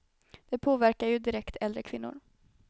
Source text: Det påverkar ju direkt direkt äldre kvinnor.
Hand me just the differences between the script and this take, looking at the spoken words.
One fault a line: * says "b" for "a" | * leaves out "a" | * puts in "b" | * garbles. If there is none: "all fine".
* leaves out "direkt"